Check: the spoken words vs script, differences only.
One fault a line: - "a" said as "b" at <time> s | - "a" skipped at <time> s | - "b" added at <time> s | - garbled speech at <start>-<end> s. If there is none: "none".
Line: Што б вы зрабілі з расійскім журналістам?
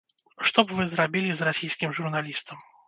none